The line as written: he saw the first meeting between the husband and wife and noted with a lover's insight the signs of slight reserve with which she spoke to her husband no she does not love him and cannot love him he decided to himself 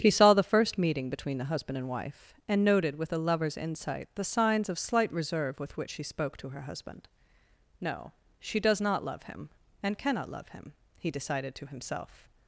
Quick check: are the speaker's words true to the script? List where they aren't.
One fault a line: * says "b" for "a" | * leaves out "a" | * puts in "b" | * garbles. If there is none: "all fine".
all fine